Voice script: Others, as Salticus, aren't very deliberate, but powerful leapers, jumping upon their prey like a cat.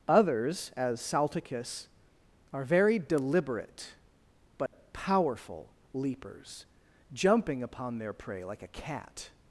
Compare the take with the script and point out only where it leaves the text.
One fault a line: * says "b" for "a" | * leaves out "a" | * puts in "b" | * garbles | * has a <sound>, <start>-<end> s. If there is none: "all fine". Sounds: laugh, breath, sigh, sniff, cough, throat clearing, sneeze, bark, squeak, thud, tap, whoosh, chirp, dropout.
* says "are" for "aren't"
* has a dropout, 4.7-4.7 s